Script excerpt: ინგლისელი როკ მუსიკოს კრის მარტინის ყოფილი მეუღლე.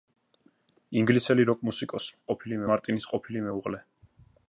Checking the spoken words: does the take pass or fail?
fail